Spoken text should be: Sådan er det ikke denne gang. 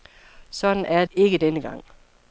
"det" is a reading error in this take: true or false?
true